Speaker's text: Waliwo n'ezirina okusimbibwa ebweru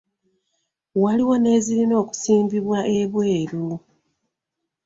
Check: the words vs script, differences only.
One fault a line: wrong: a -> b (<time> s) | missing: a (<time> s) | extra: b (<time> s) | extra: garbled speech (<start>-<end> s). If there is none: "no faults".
no faults